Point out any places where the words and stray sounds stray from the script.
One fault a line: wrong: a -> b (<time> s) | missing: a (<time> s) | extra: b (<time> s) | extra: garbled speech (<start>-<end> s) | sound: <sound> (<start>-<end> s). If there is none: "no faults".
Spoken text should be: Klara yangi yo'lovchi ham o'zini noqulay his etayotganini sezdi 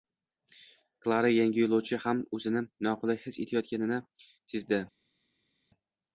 no faults